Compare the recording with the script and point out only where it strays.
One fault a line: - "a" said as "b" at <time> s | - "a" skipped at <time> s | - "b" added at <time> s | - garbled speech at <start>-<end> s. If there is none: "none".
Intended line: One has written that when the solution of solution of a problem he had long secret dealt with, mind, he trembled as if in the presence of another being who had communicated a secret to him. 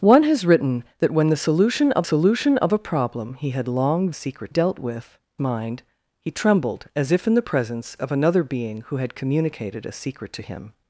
none